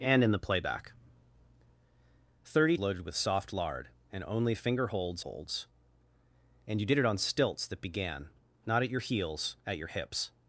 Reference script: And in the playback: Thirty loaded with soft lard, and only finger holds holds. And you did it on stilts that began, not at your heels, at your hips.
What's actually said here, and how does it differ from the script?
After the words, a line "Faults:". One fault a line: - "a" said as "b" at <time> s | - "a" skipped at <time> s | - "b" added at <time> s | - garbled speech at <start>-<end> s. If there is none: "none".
And in the playback: Thirty loaded with soft lard, and only finger holds holds. And you did it on stilts that began, not at your heels, at your hips.
Faults:
none